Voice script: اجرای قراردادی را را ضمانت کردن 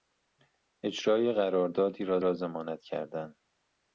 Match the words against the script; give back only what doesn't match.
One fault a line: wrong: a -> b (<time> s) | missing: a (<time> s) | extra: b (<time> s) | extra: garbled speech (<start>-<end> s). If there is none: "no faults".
no faults